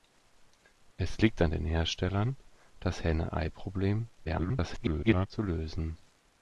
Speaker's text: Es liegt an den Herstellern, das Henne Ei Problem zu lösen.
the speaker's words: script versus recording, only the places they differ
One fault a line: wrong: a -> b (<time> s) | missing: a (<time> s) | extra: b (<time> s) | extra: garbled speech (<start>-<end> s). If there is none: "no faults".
extra: garbled speech (4.2-5.3 s)